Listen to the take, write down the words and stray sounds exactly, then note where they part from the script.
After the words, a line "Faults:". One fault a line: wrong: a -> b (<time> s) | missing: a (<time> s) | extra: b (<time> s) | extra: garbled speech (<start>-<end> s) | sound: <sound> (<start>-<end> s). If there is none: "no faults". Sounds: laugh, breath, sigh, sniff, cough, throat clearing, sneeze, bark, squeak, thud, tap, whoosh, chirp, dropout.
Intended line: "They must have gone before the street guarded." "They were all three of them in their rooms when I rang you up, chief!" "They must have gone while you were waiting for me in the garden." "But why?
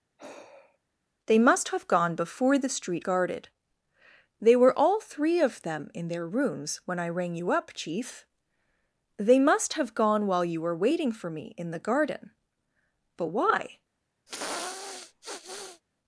"They must have gone before the street guarded." "They were all three of them in their rooms when I rang you up, chief!" "They must have gone while you were waiting for me in the garden." "But why?
Faults:
sound: sigh (0.2-0.8 s)
sound: sniff (14.3-15.8 s)